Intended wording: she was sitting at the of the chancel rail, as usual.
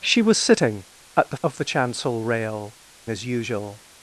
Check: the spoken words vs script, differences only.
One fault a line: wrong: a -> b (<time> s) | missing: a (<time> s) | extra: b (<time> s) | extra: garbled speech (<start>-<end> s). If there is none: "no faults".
no faults